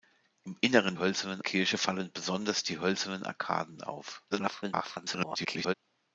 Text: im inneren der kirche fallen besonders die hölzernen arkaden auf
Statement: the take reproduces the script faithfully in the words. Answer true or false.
false